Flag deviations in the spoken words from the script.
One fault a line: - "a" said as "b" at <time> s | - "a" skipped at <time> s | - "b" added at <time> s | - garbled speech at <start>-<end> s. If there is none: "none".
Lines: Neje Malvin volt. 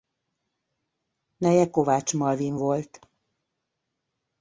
- "Kovács" added at 1.7 s